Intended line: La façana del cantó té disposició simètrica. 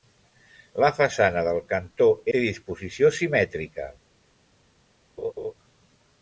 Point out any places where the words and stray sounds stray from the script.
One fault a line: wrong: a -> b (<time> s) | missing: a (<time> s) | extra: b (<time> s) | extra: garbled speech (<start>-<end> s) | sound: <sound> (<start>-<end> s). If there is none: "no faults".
sound: laugh (5.2-5.5 s)